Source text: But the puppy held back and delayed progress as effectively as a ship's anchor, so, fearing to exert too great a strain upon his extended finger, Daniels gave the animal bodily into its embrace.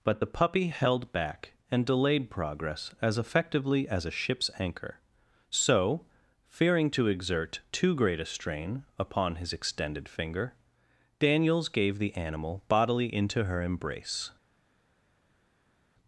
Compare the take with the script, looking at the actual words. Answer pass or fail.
fail